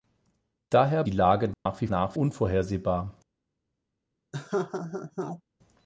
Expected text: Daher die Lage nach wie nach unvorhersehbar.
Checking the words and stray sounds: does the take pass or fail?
fail